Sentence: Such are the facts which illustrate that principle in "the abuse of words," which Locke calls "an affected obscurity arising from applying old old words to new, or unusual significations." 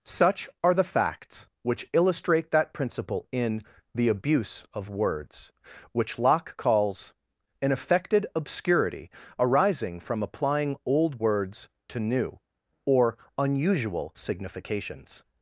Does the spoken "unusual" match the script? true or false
true